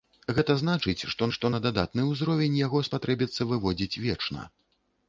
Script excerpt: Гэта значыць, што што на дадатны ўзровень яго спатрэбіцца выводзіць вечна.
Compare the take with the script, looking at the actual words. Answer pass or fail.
pass